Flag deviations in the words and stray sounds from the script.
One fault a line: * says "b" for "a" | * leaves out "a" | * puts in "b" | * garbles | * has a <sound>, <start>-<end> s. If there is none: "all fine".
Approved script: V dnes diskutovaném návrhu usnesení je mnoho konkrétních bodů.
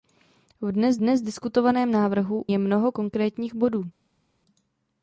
* puts in "dnes"
* leaves out "usnesení"